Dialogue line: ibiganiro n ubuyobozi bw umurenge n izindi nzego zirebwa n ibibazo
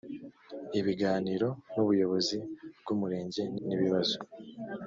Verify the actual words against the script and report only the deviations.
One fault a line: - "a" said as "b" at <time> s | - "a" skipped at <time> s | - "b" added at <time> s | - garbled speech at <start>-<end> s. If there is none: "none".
- "izindi nzego zirebwa" skipped at 3.6 s